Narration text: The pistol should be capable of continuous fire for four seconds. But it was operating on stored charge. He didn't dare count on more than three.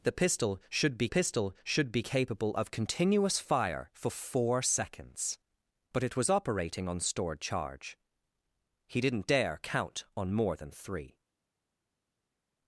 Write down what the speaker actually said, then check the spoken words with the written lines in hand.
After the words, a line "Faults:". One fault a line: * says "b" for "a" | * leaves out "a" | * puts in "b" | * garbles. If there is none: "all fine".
The pistol should be pistol should be capable of continuous fire for four seconds. But it was operating on stored charge. He didn't dare count on more than three.
Faults:
* puts in "pistol should be"